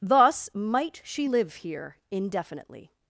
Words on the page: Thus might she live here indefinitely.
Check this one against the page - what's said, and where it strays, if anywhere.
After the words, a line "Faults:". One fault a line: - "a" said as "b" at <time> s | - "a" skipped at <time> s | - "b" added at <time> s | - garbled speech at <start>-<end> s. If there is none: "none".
Thus might she live here indefinitely.
Faults:
none